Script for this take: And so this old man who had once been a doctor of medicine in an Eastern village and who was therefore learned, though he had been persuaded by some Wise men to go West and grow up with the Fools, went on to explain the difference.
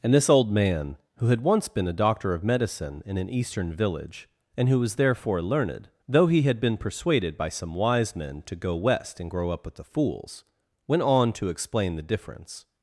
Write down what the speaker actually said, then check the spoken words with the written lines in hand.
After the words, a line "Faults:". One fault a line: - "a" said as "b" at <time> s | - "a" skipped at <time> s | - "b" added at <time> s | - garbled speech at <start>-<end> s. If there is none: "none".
And this old man who had once been a doctor of medicine in an Eastern village and who was therefore learned, though he had been persuaded by some Wise men to go West and grow up with the Fools, went on to explain the difference.
Faults:
- "so" skipped at 0.1 s